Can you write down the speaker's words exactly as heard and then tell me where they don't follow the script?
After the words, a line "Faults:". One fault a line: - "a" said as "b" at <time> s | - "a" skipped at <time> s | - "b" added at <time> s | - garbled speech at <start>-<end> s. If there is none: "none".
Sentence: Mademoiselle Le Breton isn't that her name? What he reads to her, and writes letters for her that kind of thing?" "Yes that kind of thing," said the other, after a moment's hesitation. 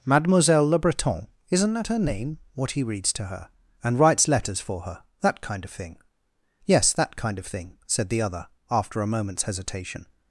Mademoiselle Le Breton isn't that her name? What he reads to her, and writes letters for her that kind of thing?" "Yes that kind of thing," said the other, after a moment's hesitation.
Faults:
none